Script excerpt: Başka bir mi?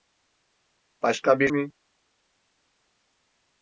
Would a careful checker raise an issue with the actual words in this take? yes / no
no